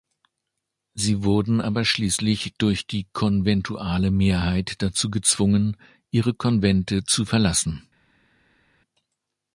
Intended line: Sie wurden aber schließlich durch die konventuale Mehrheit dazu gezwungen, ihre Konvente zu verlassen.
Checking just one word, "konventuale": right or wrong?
right